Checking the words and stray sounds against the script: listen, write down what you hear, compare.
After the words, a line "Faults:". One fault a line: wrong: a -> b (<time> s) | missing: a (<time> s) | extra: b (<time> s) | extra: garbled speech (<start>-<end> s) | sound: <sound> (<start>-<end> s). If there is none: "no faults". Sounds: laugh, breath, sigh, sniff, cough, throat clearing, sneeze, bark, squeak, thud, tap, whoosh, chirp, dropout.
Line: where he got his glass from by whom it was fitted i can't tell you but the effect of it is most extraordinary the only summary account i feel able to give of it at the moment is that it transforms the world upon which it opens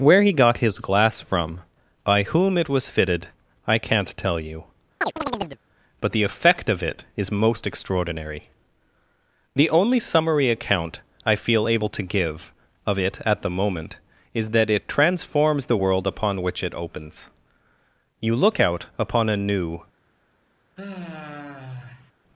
where he got his glass from by whom it was fitted i can't tell you but the effect of it is most extraordinary the only summary account i feel able to give of it at the moment is that it transforms the world upon which it opens you look out upon a new
Faults:
sound: chirp (5.0-5.6 s)
extra: you look out upon a new (18.2 s)
sound: sigh (20.8-22.1 s)